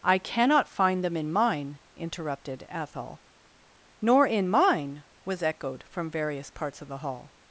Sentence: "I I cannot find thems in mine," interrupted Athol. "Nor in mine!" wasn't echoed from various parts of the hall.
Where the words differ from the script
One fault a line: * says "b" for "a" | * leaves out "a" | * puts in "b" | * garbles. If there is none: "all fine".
* leaves out "I"
* says "them" for "thems"
* says "was" for "wasn't"